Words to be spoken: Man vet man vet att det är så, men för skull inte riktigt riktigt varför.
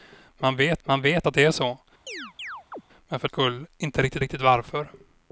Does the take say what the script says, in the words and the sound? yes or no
no